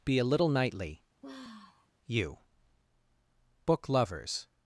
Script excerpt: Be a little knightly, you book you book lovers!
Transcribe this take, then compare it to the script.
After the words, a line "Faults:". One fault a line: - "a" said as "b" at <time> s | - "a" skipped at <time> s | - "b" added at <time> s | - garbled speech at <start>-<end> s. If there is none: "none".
Be a little knightly, you book lovers!
Faults:
- "you book" skipped at 3.9 s